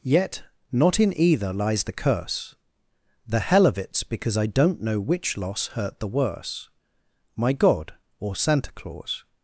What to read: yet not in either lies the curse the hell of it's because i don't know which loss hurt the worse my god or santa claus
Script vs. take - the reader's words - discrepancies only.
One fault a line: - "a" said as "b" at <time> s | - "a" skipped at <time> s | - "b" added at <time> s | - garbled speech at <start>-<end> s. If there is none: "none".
none